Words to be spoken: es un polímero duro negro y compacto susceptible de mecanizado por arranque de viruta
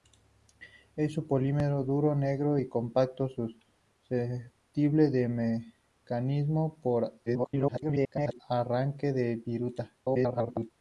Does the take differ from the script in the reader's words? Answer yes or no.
yes